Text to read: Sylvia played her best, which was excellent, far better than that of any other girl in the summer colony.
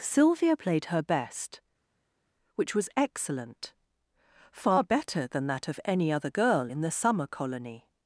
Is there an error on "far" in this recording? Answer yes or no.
no